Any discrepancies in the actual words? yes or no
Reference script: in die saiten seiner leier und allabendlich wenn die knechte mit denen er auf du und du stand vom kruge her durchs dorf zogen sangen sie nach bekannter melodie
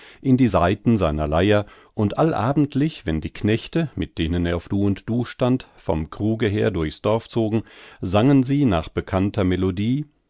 no